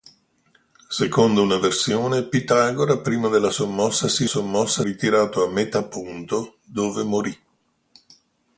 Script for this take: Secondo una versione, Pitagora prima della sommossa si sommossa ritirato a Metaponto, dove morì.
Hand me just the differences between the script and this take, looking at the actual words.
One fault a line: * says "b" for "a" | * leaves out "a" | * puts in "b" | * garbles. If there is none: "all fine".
all fine